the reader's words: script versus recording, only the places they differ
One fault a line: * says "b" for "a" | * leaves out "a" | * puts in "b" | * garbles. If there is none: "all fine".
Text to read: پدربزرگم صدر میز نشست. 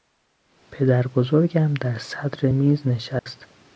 * puts in "در"